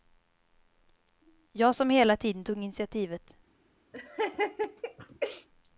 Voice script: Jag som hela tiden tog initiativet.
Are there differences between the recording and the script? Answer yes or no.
no